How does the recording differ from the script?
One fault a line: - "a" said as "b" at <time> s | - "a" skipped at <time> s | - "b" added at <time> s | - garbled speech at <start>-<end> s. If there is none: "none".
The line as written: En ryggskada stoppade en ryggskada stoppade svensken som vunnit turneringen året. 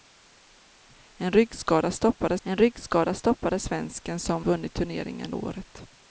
none